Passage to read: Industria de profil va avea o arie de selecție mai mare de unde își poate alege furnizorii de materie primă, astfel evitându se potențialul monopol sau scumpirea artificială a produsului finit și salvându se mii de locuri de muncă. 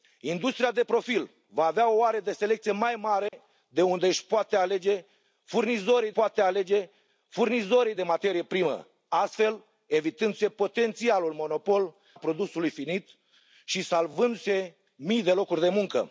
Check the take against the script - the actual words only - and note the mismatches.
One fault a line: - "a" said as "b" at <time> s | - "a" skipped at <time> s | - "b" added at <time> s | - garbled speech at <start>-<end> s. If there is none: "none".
- "poate alege furnizorii" added at 6.1 s
- "sau scumpirea artificială" skipped at 12.0 s